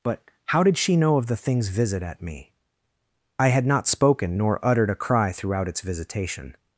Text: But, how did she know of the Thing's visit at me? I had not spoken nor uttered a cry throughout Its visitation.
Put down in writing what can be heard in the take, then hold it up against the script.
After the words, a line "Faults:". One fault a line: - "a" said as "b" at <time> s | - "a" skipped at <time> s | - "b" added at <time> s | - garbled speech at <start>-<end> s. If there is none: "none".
But, how did she know of the Thing's visit at me? I had not spoken nor uttered a cry throughout Its visitation.
Faults:
none